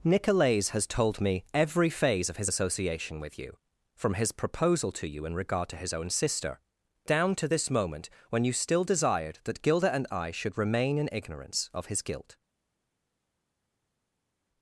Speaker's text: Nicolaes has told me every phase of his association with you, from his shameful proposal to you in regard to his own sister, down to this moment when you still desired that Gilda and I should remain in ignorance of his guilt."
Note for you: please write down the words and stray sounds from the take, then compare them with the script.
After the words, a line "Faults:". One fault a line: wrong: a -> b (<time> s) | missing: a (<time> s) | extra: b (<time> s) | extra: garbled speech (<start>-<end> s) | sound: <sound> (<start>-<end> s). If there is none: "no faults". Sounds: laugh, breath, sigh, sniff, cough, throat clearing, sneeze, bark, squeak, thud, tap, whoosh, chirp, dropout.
Nicolaes has told me every phase of his association with you, from his proposal to you in regard to his own sister, down to this moment when you still desired that Gilda and I should remain in ignorance of his guilt."
Faults:
missing: shameful (4.3 s)